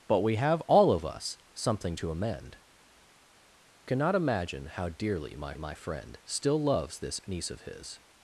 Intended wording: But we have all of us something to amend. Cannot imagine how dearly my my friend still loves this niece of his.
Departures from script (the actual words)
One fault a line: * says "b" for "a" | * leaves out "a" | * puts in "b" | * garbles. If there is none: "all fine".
all fine